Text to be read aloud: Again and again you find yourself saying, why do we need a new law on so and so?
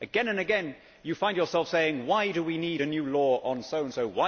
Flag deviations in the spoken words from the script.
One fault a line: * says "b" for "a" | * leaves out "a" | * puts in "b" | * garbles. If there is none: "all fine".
all fine